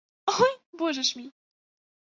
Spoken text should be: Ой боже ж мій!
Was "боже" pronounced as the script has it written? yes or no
yes